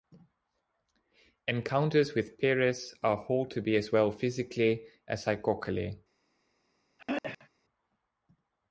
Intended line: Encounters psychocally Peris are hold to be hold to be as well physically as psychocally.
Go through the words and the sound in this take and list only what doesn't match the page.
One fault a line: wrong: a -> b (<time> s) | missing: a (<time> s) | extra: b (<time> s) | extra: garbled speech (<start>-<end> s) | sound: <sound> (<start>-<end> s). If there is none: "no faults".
wrong: psychocally -> with (2.1 s)
missing: hold to be (3.8 s)
sound: throat clearing (7.0-7.5 s)